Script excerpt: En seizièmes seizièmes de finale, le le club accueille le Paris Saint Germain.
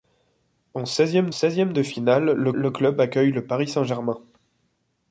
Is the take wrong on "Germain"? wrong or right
right